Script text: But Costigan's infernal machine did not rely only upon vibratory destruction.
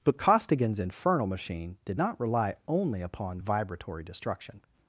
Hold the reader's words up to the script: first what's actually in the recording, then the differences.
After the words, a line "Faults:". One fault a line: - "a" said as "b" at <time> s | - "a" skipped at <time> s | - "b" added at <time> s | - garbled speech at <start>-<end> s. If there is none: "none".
But Costigan's infernal machine did not rely only upon vibratory destruction.
Faults:
none